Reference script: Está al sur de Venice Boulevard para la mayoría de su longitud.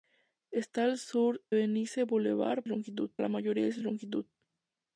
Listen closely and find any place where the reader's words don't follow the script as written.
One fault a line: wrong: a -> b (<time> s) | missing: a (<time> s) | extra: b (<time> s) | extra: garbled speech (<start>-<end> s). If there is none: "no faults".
missing: de (1.4 s)
wrong: para -> longitud (2.7 s)
extra: su (3.7 s)